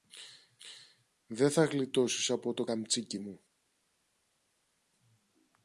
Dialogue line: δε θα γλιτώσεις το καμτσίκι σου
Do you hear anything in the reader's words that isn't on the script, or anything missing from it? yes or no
yes